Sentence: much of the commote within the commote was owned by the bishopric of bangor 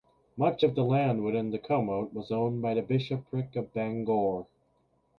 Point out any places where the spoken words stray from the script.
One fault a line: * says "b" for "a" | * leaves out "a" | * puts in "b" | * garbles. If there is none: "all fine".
* says "land" for "commote"